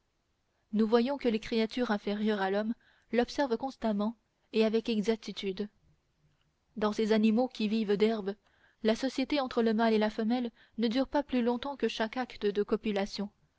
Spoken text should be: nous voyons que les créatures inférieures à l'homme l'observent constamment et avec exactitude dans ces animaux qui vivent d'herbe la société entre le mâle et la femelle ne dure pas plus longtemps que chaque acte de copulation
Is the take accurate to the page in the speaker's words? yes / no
yes